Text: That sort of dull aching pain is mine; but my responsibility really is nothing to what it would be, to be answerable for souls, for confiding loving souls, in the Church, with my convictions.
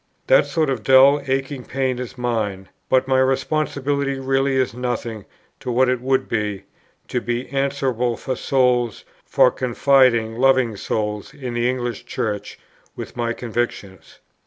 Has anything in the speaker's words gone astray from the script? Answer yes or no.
yes